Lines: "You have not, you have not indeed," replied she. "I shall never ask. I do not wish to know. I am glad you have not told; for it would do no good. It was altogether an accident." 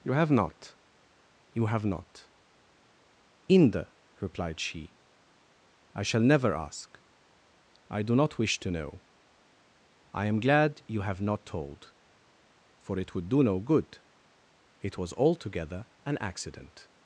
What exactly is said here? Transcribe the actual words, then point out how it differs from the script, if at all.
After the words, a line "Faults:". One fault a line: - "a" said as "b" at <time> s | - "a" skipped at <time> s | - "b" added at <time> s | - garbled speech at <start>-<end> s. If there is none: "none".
"You have not, you have not inde," replied she. "I shall never ask. I do not wish to know. I am glad you have not told; for it would do no good. It was altogether an accident."
Faults:
- "indeed" said as "inde" at 3.5 s